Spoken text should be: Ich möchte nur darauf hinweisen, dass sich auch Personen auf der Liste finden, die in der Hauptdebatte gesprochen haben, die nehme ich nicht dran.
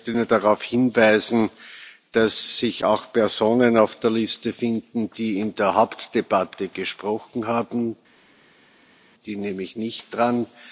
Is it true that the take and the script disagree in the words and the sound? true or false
false